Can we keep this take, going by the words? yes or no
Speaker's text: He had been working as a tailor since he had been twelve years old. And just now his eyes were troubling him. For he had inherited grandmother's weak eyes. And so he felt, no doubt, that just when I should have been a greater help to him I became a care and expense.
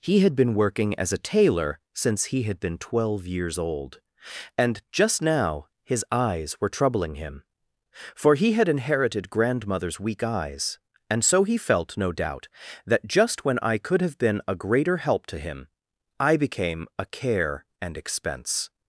no